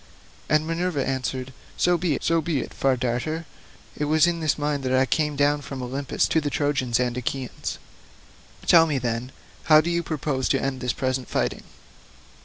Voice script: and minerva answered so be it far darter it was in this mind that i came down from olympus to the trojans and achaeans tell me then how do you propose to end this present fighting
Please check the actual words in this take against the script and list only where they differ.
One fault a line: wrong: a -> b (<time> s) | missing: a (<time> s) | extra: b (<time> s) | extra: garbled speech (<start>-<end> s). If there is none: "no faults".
extra: so be (2.2 s)